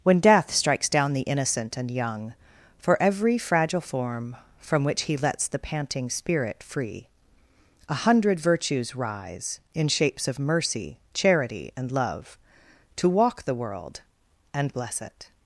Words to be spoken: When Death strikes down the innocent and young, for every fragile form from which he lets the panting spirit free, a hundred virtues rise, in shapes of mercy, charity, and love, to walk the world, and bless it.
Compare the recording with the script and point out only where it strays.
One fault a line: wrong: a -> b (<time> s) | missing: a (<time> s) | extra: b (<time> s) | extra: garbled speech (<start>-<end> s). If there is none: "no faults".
no faults